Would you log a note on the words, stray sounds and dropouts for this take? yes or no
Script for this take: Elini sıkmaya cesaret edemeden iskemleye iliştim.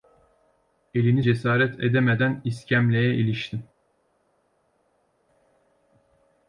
yes